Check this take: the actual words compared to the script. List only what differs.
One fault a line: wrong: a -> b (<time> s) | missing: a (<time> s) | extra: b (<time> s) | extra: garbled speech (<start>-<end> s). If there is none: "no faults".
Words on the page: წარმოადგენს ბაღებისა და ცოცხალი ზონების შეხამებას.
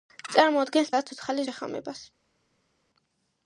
missing: ბაღებისა (0.9 s)
missing: ზონების (1.5 s)